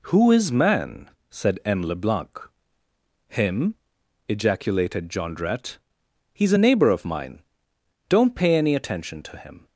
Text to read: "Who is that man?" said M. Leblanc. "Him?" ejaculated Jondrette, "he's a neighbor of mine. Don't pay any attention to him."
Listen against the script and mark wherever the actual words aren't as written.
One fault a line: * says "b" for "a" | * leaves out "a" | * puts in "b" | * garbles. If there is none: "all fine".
* leaves out "that"